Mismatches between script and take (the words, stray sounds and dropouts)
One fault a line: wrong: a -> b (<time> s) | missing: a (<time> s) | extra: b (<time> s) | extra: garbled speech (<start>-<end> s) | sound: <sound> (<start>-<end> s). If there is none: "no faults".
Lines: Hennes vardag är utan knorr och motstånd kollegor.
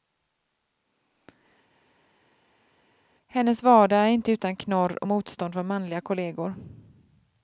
extra: inte (4.1 s)
extra: från manliga (5.5 s)